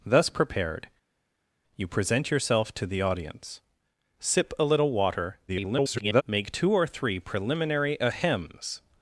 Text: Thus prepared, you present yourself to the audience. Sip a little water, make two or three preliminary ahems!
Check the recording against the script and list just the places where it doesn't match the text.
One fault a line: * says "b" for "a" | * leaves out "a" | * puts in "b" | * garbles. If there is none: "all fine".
* garbles